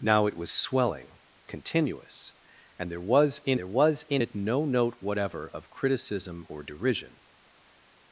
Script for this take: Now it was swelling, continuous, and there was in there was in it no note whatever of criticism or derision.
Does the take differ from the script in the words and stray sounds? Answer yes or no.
no